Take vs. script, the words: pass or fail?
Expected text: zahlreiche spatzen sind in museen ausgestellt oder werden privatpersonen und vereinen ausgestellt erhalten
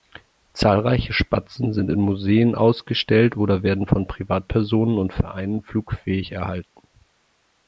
fail